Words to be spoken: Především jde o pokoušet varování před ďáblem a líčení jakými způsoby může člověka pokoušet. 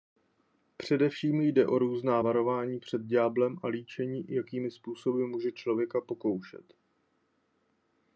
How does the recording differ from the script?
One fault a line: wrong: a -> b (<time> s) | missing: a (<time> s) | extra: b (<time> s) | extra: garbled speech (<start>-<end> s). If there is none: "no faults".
wrong: pokoušet -> různá (1.8 s)